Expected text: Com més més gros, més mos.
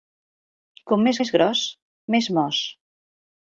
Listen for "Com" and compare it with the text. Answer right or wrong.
right